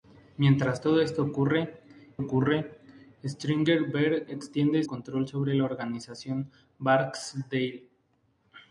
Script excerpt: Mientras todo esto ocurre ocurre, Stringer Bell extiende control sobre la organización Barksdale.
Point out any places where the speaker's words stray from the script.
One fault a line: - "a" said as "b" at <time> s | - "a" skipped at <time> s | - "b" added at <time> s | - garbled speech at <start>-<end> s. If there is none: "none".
none